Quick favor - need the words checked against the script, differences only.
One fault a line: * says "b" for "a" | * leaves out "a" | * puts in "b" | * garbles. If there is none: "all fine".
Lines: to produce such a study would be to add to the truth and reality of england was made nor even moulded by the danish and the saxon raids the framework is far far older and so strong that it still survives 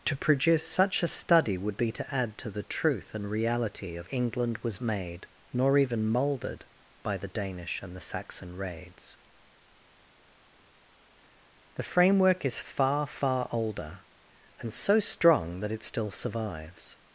all fine